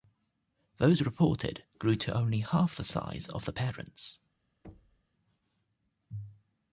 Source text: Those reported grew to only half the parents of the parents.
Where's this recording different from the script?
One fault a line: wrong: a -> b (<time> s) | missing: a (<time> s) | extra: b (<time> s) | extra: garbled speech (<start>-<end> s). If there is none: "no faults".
wrong: parents -> size (2.8 s)